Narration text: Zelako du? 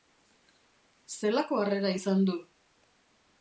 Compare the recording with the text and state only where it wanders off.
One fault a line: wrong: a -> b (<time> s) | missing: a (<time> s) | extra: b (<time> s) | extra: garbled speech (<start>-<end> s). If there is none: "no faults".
extra: harrera izan (1.6 s)